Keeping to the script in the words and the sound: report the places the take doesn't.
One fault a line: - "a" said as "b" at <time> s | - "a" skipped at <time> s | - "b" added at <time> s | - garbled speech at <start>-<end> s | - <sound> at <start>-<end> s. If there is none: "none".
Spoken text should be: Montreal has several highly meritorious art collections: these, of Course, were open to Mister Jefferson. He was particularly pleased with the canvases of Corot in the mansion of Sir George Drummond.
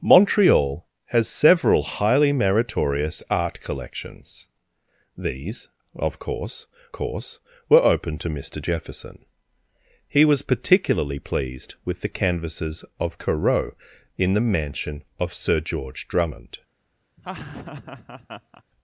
- "Course" added at 6.9 s
- laugh at 17.2-18.6 s